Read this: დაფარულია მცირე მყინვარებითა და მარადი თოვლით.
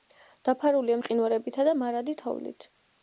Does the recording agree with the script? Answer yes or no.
no